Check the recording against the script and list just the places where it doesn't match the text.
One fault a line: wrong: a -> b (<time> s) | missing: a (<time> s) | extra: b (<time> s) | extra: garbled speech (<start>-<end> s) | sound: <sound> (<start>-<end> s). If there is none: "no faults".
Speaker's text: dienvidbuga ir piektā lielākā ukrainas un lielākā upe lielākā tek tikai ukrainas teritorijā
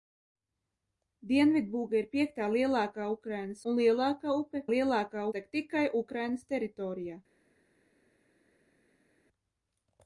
no faults